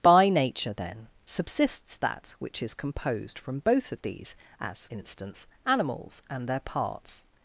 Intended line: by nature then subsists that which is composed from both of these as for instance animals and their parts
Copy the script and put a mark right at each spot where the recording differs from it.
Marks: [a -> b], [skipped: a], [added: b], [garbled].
by nature then subsists that which is composed from both of these as [skipped: for] instance animals and their parts